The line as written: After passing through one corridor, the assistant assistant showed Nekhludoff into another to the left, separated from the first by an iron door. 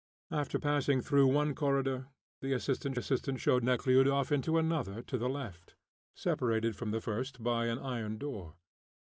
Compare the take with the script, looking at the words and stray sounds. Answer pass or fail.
pass